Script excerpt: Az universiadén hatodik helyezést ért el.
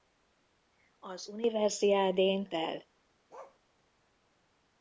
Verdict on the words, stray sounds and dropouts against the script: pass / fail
fail